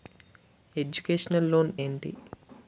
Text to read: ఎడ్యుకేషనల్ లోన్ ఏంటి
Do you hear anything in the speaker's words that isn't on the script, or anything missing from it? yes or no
no